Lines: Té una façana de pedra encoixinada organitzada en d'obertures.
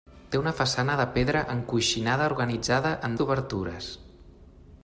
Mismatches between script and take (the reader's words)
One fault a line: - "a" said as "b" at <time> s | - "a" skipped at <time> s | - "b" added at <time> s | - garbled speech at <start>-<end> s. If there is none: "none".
none